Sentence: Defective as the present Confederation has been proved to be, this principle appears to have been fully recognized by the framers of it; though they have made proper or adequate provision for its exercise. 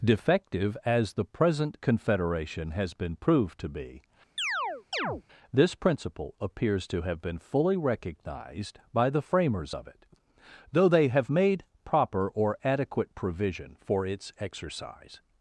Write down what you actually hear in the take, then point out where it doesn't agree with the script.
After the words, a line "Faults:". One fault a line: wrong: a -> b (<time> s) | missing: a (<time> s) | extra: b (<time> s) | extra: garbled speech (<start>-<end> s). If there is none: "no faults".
Defective as the present Confederation has been proved to be, this principle appears to have been fully recognized by the framers of it; though they have made proper or adequate provision for its exercise.
Faults:
no faults